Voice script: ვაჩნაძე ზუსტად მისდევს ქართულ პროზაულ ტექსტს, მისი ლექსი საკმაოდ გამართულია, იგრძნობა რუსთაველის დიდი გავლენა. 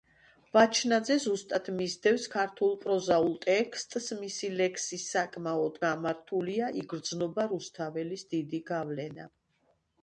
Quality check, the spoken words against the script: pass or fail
pass